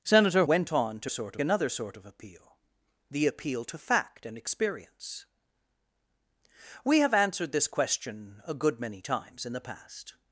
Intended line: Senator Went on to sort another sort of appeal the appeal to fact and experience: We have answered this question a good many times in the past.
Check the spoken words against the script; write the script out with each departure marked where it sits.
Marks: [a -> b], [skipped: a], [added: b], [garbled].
Senator Went on to sort another sort of appeal the appeal to fact and experience: We have answered this question a good many times in the past.